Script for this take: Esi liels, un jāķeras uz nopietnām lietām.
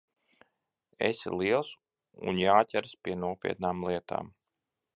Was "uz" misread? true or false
true